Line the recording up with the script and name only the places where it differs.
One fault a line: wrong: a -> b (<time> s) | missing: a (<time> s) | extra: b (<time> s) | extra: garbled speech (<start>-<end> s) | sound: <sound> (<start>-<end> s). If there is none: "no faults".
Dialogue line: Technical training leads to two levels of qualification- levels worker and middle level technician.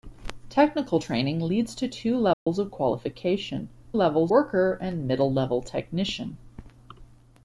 sound: dropout (2.3-2.5 s)